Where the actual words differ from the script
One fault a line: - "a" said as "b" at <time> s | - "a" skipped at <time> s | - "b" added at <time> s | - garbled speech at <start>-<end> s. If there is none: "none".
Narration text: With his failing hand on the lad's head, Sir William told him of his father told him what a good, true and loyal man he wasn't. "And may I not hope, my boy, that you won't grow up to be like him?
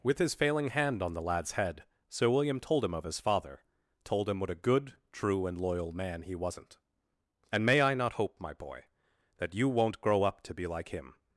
none